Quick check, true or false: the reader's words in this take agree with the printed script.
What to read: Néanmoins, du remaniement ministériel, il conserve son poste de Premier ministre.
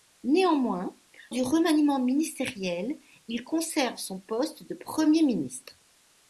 true